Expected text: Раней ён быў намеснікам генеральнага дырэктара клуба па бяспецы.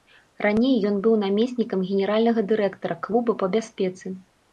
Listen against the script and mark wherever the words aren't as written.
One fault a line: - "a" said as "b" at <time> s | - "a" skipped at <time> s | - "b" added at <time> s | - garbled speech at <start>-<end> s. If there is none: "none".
none